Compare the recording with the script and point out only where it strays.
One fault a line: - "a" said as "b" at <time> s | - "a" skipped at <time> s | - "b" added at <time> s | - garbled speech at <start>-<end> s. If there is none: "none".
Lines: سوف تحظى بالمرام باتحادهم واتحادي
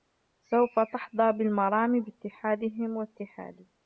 none